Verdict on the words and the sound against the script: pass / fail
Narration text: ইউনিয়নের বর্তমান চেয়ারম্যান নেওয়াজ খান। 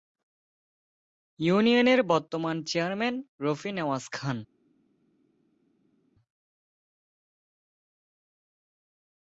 fail